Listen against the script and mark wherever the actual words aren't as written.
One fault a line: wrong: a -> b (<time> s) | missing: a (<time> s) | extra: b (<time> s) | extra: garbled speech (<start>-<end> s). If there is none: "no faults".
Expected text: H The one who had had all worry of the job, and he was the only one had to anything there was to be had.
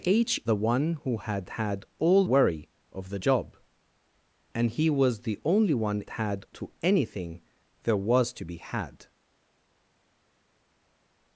no faults